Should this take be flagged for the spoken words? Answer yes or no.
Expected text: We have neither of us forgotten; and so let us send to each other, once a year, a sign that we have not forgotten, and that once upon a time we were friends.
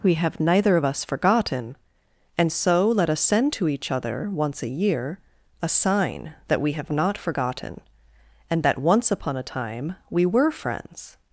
no